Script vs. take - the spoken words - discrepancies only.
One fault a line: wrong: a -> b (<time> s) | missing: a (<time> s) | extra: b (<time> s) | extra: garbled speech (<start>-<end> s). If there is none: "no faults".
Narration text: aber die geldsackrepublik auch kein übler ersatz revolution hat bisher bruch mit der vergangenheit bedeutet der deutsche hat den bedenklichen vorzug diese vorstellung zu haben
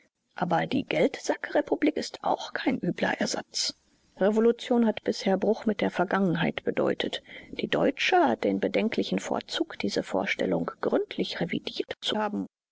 extra: ist (2.0 s)
wrong: der -> die (7.5 s)
extra: gründlich revidiert (10.8 s)